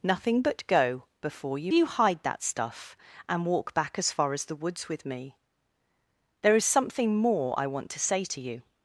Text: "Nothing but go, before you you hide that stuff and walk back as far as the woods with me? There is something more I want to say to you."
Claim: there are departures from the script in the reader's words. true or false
false